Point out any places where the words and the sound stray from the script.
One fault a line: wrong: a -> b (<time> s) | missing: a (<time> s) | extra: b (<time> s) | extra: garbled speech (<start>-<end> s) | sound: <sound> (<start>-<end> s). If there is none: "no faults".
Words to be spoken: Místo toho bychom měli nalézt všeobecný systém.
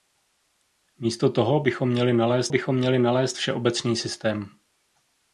extra: bychom měli nalézt (2.5 s)